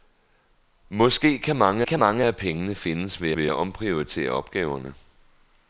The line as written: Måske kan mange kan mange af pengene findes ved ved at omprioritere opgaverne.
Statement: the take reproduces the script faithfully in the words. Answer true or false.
true